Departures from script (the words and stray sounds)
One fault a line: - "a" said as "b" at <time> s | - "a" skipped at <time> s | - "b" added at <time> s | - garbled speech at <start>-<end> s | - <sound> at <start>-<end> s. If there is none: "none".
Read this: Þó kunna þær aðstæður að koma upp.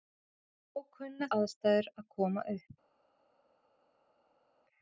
- "þær" skipped at 1.3 s